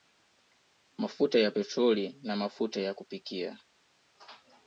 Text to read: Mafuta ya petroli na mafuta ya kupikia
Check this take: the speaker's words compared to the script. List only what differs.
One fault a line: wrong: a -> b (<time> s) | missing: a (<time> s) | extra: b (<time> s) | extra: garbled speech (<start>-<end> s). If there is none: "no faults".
no faults